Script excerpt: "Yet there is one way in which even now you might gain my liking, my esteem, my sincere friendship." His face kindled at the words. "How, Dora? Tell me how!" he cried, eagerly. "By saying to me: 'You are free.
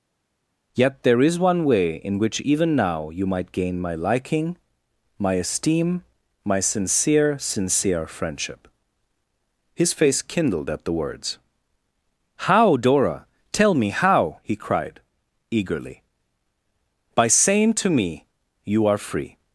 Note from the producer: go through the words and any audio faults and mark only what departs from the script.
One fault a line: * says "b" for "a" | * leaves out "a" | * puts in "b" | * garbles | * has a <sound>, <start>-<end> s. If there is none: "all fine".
* puts in "sincere"